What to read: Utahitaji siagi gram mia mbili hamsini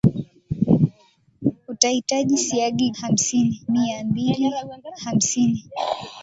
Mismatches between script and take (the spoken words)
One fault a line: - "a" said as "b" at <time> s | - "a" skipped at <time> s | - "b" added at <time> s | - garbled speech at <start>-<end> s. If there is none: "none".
- "gram" said as "hamsini" at 3.0 s